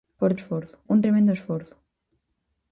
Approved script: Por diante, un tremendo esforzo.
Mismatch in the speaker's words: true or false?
true